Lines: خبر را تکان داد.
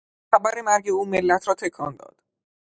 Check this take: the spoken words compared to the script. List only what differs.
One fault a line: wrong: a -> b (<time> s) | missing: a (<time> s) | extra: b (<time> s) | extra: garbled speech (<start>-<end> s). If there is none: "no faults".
extra: مرگ او ملت (0.6 s)